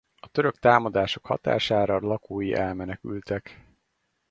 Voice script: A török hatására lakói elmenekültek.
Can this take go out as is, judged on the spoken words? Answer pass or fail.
fail